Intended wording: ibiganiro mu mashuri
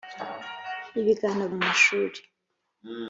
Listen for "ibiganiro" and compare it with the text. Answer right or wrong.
right